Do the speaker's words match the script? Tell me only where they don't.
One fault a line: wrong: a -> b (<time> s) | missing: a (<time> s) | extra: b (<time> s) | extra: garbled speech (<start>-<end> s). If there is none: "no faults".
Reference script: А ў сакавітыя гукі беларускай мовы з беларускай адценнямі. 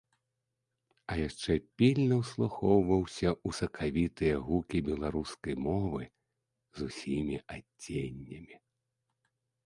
extra: яшчэ пільна ўслухоўваўся (1.3 s)
wrong: беларускай -> усімі (6.9 s)